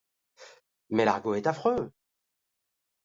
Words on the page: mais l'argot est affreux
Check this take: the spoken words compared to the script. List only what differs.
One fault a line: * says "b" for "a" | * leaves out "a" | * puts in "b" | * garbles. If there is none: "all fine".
all fine